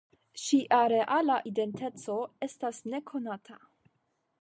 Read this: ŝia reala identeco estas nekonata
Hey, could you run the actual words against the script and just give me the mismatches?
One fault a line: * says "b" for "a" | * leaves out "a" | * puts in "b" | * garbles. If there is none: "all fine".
all fine